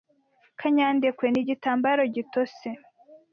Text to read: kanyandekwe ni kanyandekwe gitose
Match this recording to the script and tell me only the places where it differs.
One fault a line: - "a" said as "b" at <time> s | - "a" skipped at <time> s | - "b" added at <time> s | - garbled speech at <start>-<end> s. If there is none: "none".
- "kanyandekwe" said as "igitambaro" at 1.4 s